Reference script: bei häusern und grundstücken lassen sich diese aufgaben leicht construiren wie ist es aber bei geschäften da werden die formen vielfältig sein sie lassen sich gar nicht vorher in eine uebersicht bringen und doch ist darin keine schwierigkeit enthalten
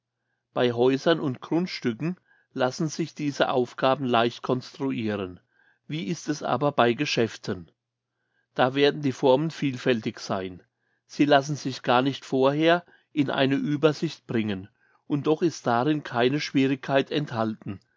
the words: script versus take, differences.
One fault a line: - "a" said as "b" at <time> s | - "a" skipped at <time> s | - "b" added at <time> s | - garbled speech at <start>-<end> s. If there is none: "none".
none